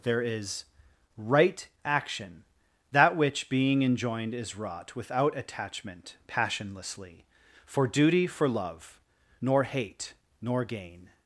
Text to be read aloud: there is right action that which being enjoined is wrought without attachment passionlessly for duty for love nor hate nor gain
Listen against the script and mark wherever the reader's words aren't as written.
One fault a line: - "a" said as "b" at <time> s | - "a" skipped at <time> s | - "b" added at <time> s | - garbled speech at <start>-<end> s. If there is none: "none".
none